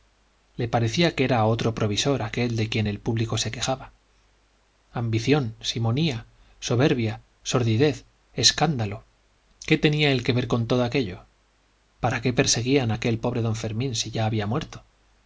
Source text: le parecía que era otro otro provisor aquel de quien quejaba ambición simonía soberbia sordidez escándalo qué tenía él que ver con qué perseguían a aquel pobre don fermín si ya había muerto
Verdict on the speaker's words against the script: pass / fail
fail